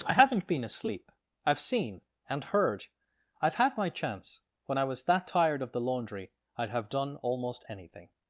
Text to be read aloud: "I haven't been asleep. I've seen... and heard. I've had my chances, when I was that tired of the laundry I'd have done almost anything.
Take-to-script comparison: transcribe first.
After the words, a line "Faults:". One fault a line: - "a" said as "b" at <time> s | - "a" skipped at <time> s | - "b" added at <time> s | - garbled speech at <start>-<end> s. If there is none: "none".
"I haven't been asleep. I've seen... and heard. I've had my chance, when I was that tired of the laundry I'd have done almost anything.
Faults:
- "chances" said as "chance" at 3.9 s